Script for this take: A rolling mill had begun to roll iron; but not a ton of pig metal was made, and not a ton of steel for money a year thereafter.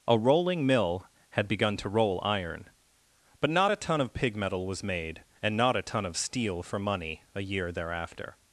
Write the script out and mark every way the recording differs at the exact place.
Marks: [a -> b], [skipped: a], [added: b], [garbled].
A rolling mill had begun to roll iron; but not a ton of pig metal was made, and not a ton of steel for money a year thereafter.